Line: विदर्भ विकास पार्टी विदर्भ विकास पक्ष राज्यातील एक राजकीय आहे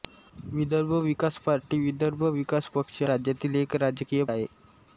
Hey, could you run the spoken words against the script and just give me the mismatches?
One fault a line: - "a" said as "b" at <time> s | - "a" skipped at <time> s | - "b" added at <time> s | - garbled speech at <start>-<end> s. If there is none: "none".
none